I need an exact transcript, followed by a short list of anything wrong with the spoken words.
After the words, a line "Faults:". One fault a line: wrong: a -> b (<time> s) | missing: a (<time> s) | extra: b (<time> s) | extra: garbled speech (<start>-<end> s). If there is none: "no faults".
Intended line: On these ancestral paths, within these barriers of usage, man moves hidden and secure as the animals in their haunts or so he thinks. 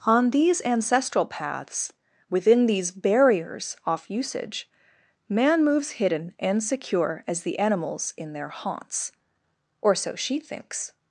On these ancestral paths, within these barriers off usage, man moves hidden and secure as the animals in their haunts or so she thinks.
Faults:
wrong: of -> off (3.9 s)
wrong: he -> she (10.2 s)